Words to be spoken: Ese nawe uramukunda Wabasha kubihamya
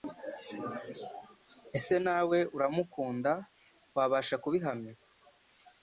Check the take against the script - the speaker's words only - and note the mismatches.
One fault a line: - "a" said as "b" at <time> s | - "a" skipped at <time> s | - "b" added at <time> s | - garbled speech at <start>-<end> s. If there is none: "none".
none